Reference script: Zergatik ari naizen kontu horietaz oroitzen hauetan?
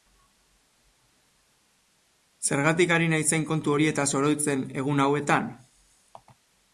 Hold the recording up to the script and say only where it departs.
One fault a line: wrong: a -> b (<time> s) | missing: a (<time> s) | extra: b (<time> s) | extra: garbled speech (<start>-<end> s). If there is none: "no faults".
extra: egun (4.8 s)